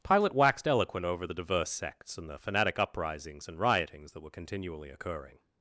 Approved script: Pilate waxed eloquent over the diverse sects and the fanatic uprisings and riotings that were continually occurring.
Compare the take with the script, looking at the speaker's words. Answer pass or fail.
pass